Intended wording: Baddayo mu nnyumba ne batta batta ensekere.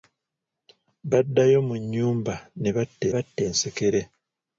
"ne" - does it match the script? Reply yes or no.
yes